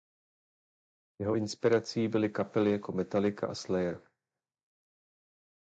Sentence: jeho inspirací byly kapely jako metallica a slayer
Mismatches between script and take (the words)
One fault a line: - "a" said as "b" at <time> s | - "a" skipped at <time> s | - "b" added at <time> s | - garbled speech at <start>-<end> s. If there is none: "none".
none